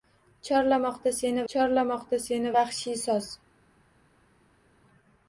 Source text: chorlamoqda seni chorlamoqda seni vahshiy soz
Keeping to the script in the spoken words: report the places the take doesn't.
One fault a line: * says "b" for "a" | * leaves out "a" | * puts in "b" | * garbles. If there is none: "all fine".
all fine